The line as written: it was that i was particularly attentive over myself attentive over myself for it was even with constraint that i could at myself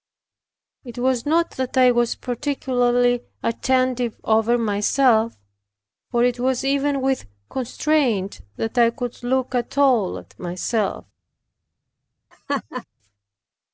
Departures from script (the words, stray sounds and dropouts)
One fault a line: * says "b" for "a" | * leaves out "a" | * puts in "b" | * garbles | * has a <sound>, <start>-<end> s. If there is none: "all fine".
* puts in "not"
* leaves out "attentive over myself"
* puts in "look at all"
* has a laugh, 12.3-12.8 s